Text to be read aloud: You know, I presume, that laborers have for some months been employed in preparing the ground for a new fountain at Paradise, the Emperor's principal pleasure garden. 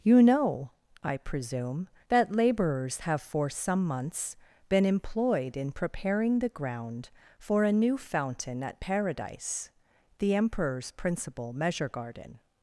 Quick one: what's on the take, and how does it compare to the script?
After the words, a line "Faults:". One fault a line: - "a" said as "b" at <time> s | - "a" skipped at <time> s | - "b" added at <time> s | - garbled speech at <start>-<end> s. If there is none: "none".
You know, I presume, that laborers have for some months been employed in preparing the ground for a new fountain at Paradise, the Emperor's principal measure garden.
Faults:
- "pleasure" said as "measure" at 11.5 s